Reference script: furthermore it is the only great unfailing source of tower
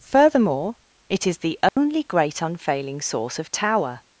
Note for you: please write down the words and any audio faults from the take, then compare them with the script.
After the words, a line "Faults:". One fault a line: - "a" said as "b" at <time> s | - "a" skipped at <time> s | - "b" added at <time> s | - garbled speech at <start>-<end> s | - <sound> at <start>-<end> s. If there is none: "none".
furthermore it is the only great unfailing source of tower
Faults:
- dropout at 1.7-1.8 s